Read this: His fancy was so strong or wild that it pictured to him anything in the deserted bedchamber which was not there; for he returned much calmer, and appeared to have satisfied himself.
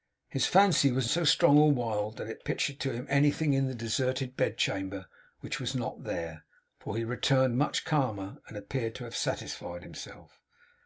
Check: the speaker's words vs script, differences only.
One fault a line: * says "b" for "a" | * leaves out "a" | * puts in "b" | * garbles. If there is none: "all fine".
all fine